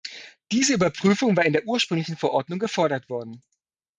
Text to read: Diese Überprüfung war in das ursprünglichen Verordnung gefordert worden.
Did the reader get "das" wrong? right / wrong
wrong